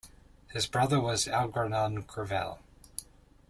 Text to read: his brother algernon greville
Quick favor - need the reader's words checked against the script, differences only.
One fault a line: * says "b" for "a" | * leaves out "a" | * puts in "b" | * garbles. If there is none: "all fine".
* puts in "was"